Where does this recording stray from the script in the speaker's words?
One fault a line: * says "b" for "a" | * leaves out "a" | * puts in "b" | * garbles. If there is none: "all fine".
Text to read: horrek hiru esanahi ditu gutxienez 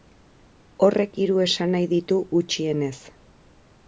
all fine